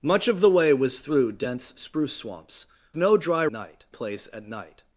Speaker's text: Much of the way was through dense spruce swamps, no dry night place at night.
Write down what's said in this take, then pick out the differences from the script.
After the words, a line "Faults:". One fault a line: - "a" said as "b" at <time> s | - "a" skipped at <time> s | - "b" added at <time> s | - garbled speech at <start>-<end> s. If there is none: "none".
Much of the way was through dense spruce swamps, no dry night place at night.
Faults:
none